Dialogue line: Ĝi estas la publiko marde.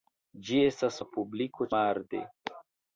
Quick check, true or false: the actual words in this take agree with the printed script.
true